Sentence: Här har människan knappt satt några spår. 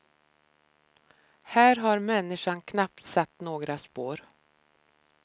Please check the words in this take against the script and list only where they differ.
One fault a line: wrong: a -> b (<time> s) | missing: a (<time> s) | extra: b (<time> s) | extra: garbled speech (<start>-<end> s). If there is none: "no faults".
no faults